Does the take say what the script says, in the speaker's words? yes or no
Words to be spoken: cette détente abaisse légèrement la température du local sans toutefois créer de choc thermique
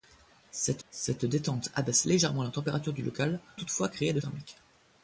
no